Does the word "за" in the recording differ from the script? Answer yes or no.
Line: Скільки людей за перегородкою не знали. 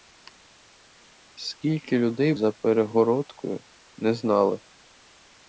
no